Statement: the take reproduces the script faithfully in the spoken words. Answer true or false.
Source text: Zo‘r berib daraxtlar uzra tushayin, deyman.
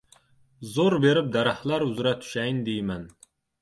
true